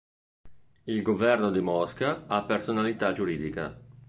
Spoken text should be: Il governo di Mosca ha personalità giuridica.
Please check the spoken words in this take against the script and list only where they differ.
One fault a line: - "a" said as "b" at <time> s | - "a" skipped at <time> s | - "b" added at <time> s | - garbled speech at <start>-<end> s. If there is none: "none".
none